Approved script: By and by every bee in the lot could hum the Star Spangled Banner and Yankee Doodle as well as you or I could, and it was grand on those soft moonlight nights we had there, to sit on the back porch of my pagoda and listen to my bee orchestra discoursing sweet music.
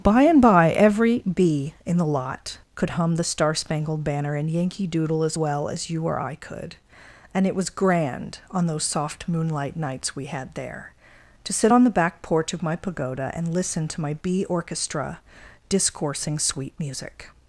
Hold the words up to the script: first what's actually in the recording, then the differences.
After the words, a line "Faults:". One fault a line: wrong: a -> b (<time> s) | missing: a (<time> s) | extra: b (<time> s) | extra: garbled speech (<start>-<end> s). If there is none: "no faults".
By and by every bee in the lot could hum the Star Spangled Banner and Yankee Doodle as well as you or I could, and it was grand on those soft moonlight nights we had there, to sit on the back porch of my pagoda and listen to my bee orchestra discoursing sweet music.
Faults:
no faults